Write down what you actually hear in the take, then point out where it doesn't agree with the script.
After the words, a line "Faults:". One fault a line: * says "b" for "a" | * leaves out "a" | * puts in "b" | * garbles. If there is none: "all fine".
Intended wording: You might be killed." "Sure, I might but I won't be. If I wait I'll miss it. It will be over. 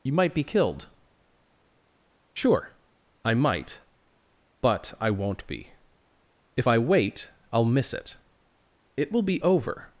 You might be killed." "Sure, I might but I won't be. If I wait I'll miss it. It will be over.
Faults:
all fine